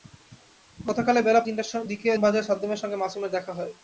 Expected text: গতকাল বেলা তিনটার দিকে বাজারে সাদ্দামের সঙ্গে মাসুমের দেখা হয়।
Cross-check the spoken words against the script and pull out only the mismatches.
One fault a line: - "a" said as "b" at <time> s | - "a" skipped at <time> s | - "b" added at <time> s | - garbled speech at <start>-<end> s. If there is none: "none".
none